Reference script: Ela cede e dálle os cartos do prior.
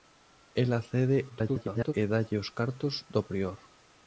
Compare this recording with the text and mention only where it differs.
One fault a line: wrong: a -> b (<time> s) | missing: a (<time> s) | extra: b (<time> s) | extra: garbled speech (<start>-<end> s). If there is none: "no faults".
extra: garbled speech (1.3-1.9 s)